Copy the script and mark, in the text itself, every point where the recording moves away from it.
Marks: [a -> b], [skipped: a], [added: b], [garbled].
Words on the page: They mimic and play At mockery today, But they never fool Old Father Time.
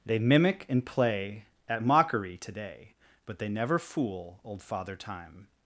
They mimic and play At mockery today, But they never fool Old Father Time.